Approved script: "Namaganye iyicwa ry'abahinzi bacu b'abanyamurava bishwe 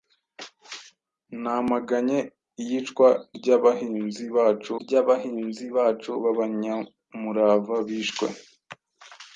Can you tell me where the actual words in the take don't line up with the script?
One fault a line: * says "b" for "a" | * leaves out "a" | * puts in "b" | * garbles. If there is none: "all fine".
* puts in "ry'abahinzi bacu"